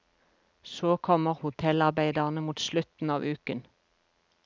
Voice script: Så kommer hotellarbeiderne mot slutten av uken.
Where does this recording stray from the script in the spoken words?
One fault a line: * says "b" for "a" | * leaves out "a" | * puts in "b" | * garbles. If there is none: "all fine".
all fine